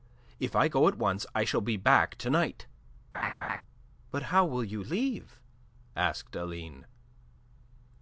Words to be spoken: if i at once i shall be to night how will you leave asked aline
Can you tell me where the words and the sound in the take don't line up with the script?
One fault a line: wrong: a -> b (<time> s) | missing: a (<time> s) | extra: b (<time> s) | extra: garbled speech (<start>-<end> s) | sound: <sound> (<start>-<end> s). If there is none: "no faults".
extra: go (0.7 s)
extra: back (1.8 s)
sound: laugh (3.1-3.6 s)
extra: but (4.1 s)